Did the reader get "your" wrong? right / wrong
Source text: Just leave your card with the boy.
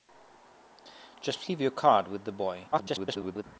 right